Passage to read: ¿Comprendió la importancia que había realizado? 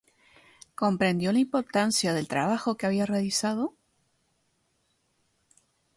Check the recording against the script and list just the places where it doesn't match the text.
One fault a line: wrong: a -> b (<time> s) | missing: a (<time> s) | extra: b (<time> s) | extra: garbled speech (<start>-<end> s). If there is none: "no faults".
extra: del trabajo (2.1 s)